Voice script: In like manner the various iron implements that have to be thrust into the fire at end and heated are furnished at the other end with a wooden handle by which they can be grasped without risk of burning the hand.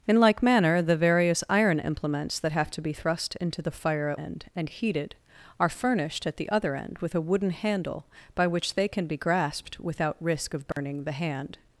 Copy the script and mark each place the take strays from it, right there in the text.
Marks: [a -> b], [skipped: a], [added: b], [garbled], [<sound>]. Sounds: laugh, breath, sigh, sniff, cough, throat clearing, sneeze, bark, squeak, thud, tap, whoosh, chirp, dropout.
In like manner the various iron implements that have to be thrust into the fire at end and heated are furnished at the other end with a wooden handle by which they can be grasped without risk of burning [dropout] the hand.